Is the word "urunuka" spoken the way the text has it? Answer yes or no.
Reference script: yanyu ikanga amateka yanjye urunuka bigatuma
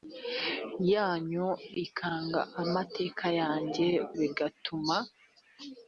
no